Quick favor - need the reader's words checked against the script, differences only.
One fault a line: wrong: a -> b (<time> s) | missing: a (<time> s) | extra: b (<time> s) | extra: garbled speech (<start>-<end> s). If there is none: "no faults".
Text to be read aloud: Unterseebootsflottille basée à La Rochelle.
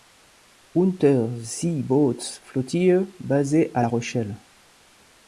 no faults